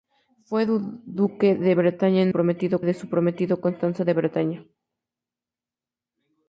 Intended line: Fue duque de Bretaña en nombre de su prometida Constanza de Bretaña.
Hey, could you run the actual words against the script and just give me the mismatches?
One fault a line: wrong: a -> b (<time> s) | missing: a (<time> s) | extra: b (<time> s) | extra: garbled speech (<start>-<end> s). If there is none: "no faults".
wrong: nombre -> prometida (2.3 s)